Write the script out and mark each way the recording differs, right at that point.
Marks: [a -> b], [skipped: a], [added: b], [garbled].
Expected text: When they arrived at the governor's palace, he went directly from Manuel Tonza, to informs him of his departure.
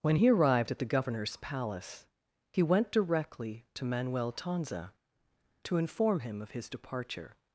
When [they -> he] arrived at the governor's palace, he went directly [from -> to] Manuel Tonza, to [informs -> inform] him of his departure.